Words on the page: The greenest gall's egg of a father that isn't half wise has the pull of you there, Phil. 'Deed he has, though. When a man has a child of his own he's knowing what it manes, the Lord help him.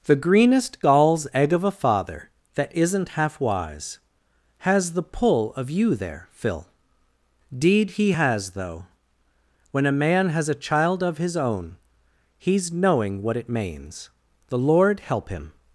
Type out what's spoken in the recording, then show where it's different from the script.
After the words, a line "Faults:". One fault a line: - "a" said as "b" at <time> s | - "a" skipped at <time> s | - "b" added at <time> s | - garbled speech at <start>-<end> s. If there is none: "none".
The greenest gall's egg of a father that isn't half wise has the pull of you there, Phil. 'Deed he has, though. When a man has a child of his own he's knowing what it manes, the Lord help him.
Faults:
none